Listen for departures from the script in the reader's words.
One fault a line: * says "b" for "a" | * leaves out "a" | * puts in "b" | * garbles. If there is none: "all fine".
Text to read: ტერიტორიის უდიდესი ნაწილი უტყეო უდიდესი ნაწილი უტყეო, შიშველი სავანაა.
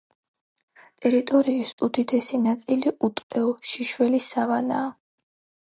* leaves out "უდიდესი ნაწილი უტყეო"